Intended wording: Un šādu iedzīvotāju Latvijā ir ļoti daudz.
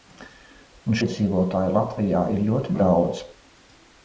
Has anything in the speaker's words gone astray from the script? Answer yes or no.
yes